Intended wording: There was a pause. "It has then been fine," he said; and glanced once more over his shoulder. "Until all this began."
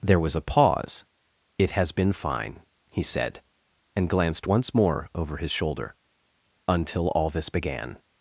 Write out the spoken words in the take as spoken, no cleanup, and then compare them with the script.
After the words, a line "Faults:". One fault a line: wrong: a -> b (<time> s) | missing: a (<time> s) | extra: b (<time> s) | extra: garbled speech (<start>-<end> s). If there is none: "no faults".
There was a pause. "It has been fine," he said; and glanced once more over his shoulder. "Until all this began."
Faults:
missing: then (1.9 s)